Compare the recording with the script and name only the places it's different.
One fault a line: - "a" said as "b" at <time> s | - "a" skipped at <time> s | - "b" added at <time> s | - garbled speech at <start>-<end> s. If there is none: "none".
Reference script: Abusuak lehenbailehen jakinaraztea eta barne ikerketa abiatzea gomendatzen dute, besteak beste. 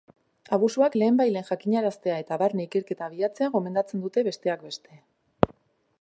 none